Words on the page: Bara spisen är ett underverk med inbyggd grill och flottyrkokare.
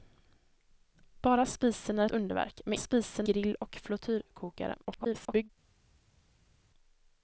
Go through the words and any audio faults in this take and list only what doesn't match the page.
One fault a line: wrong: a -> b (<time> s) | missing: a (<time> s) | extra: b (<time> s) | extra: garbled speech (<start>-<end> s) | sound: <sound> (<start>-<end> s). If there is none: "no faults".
missing: ett (2.0 s)
wrong: inbyggd -> spisen (2.7 s)
extra: garbled speech (4.8-5.5 s)